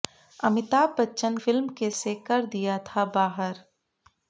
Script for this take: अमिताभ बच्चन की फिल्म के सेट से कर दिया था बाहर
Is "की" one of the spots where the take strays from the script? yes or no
yes